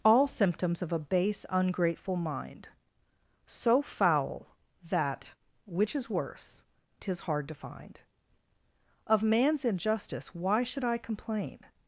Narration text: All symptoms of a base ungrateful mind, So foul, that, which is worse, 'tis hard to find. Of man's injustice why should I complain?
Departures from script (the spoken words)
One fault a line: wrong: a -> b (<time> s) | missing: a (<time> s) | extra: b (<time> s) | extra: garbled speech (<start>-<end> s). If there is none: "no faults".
no faults